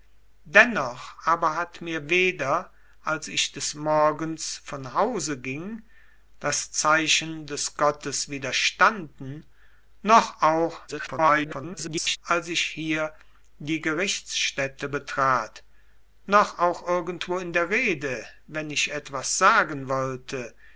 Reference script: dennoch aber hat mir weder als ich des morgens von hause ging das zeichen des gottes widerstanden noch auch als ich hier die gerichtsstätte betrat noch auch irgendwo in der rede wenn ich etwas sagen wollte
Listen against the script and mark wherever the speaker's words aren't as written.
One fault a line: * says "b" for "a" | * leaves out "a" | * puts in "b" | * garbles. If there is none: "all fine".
* garbles